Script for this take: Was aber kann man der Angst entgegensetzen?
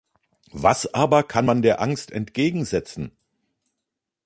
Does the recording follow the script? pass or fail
pass